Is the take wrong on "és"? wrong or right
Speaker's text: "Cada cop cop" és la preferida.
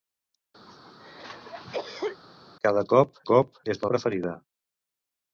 right